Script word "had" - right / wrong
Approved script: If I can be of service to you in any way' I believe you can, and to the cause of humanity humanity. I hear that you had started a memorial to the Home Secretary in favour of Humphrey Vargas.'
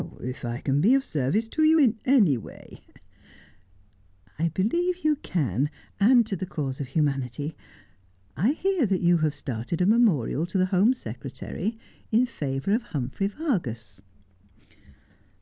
wrong